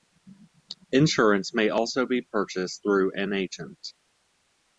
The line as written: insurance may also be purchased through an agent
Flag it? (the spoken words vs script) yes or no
no